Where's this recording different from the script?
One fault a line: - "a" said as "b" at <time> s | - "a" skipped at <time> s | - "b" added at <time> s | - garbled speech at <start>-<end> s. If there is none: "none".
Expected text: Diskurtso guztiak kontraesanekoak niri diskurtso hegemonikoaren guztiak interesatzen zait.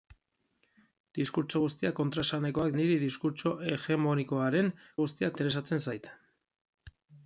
none